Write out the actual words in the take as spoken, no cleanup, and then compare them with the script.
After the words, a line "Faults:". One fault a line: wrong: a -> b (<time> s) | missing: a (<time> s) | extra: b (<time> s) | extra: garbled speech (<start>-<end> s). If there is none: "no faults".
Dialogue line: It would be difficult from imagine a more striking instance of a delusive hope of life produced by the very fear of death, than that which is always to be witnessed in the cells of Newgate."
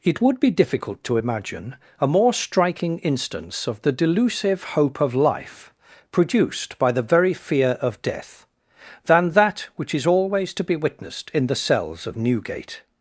It would be difficult to imagine a more striking instance of the delusive hope of life produced by the very fear of death, than that which is always to be witnessed in the cells of Newgate."
Faults:
wrong: from -> to (1.0 s)
wrong: a -> the (3.8 s)